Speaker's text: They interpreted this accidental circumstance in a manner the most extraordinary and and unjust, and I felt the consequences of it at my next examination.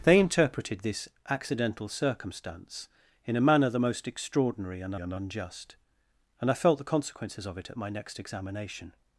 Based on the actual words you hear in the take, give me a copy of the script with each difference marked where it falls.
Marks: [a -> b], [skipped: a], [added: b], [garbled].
They interpreted this accidental circumstance in a manner the most extraordinary and and unjust, and I felt the consequences of it at my next examination.